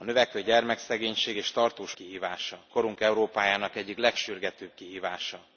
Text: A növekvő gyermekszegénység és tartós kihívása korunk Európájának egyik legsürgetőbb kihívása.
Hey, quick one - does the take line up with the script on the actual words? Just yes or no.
yes